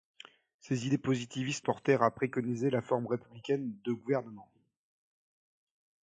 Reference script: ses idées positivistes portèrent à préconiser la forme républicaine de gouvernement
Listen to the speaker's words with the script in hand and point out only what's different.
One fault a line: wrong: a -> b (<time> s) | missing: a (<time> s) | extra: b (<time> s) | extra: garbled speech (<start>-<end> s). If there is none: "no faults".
no faults